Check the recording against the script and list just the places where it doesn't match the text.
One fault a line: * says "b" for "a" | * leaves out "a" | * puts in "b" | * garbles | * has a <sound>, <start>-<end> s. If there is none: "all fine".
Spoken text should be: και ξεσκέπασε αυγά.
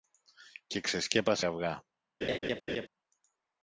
* has a laugh, 2.2-2.9 s